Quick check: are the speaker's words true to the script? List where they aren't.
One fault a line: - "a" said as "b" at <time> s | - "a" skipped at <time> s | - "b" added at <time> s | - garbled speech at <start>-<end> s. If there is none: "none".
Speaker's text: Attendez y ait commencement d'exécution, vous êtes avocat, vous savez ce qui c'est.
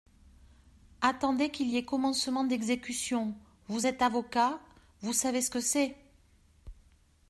- "qu'il" added at 1.5 s
- "qui" said as "que" at 5.5 s